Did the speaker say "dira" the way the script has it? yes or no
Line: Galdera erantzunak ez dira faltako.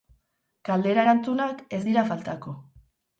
yes